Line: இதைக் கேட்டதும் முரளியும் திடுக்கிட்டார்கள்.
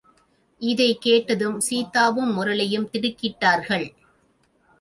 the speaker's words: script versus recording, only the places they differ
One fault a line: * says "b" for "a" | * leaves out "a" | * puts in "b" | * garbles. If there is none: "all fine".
* puts in "சீதாவும்"